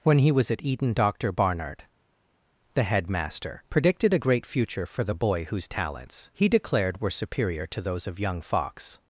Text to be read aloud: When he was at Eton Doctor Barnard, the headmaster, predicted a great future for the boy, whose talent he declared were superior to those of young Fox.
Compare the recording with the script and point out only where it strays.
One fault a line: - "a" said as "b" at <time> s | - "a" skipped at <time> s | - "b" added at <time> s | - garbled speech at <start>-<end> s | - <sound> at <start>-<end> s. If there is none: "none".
- "talent" said as "talents" at 5.7 s